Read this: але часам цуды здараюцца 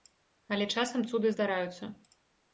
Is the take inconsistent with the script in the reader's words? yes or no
no